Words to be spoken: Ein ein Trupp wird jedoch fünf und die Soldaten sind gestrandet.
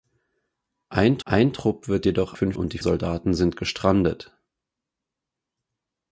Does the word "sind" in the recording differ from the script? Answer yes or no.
no